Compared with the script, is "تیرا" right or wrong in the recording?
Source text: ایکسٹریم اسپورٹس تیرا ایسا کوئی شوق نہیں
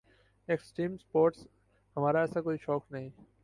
wrong